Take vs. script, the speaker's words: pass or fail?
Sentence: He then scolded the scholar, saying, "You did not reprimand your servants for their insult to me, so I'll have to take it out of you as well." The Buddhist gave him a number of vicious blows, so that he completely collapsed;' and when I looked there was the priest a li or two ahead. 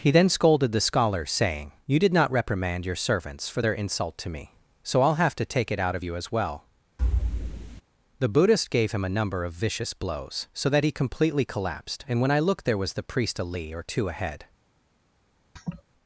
pass